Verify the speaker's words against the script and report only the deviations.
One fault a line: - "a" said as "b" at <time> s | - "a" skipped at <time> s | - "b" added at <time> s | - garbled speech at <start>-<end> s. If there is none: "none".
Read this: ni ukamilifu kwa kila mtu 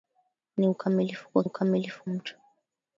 - "kila" said as "ukamilifu" at 1.4 s